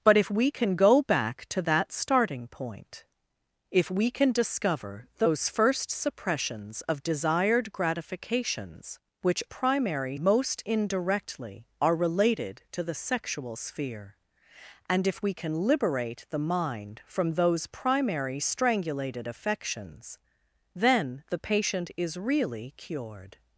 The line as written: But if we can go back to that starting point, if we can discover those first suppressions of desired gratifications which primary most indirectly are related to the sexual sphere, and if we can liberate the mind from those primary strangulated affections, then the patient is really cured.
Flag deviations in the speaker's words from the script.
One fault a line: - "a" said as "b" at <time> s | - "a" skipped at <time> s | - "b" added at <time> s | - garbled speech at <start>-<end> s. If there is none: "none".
none